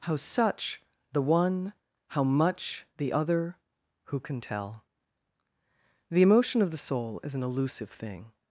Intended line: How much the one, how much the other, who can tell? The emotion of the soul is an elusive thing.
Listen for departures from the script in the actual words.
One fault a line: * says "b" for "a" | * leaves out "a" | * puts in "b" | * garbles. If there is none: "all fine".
* says "such" for "much"